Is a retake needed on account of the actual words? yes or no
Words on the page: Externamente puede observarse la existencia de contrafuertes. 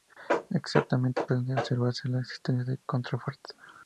no